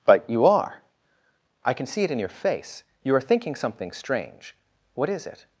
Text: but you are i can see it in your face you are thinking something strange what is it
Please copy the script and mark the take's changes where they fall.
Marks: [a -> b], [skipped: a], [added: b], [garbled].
but you are i can see it in your face you are thinking something strange what is it